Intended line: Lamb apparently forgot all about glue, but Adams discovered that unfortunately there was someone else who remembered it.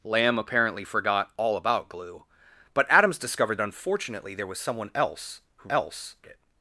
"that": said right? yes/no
no